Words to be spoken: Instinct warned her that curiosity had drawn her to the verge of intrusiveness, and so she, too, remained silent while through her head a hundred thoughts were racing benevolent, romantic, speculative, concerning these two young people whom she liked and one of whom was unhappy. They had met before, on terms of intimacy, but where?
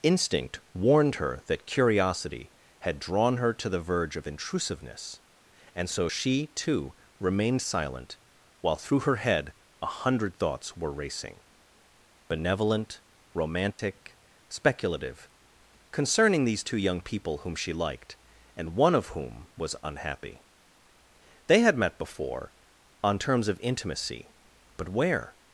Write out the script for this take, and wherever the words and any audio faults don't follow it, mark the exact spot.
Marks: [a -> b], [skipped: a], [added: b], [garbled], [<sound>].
Instinct warned her that curiosity had drawn her to the verge of intrusiveness, and so she, too, remained silent while through her head a hundred thoughts were racing benevolent, romantic, [dropout] speculative, concerning these two young people whom she liked and one of whom was unhappy. They had met before, on terms of intimacy, but where?